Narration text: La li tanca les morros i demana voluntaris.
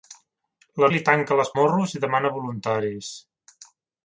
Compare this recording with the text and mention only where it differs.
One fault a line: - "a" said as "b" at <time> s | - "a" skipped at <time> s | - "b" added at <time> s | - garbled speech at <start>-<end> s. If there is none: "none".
none